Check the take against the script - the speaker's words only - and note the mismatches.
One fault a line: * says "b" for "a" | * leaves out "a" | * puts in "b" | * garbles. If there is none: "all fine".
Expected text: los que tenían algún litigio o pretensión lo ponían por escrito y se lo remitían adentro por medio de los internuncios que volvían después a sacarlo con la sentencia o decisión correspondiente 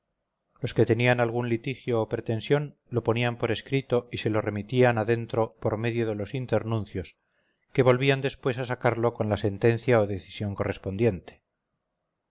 all fine